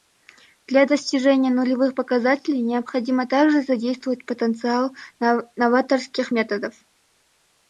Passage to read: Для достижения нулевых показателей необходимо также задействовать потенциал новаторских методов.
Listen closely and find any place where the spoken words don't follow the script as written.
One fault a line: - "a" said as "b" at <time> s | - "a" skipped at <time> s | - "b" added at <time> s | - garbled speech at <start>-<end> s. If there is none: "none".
none